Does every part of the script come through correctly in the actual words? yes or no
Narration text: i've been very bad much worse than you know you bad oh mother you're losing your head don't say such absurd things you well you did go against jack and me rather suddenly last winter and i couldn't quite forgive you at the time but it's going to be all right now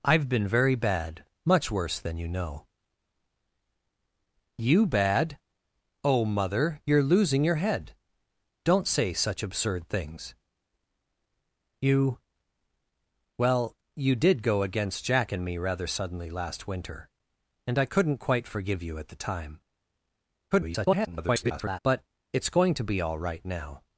no